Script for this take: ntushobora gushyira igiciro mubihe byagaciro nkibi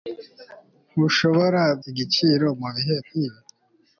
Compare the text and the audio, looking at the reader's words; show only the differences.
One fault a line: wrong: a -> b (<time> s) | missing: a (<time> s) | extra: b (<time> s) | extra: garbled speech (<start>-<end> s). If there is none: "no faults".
missing: gushyira (1.6 s)
missing: byagaciro (2.9 s)